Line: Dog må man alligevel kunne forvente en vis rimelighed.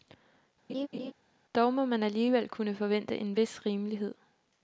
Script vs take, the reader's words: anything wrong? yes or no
no